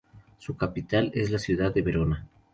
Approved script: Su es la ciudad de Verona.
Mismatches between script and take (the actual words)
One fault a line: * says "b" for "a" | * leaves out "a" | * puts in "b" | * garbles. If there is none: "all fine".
* puts in "capital"